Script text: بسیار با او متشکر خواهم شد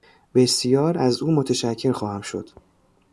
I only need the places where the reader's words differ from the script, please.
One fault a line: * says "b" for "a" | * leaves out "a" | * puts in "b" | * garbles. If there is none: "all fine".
* says "از" for "با"